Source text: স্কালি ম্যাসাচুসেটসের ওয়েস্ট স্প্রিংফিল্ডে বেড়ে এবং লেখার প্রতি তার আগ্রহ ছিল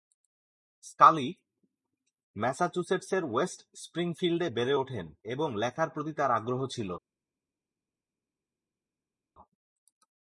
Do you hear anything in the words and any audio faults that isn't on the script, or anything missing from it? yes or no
yes